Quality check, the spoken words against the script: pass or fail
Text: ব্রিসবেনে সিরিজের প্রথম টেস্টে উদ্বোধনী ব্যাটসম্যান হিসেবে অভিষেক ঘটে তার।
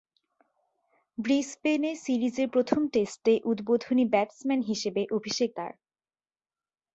fail